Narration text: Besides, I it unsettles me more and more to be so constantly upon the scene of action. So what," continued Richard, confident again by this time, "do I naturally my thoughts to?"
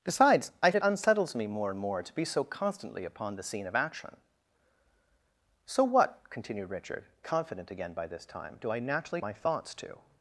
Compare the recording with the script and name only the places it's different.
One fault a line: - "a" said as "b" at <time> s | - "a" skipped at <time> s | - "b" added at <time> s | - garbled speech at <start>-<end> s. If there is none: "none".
none